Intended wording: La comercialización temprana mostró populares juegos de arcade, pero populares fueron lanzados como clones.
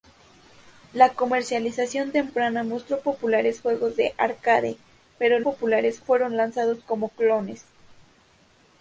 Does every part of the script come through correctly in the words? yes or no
yes